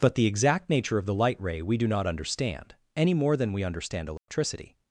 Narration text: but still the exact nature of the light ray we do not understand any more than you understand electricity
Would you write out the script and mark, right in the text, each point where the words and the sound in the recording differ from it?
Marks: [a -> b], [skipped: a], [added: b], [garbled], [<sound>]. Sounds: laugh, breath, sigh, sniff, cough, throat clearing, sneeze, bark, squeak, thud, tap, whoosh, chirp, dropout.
but [skipped: still] the exact nature of the light ray we do not understand any more than [you -> we] understand electricity [dropout]